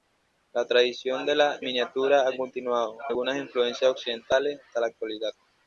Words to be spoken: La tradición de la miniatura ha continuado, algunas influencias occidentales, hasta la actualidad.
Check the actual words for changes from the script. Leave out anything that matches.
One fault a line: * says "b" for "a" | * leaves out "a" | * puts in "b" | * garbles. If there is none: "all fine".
all fine